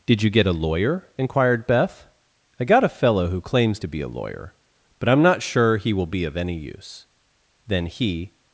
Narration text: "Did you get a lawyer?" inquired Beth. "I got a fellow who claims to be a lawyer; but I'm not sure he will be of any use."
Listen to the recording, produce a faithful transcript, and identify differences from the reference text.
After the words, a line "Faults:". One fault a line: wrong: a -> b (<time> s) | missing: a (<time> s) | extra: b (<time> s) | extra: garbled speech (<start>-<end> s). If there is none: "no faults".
"Did you get a lawyer?" inquired Beth. "I got a fellow who claims to be a lawyer; but I'm not sure he will be of any use." Then he
Faults:
extra: Then he (7.7 s)